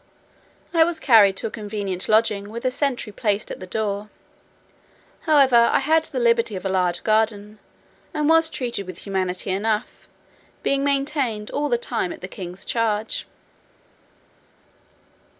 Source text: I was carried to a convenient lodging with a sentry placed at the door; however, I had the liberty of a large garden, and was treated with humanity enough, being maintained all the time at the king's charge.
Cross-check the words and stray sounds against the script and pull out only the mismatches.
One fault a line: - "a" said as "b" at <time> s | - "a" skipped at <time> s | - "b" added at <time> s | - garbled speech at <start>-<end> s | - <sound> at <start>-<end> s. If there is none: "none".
none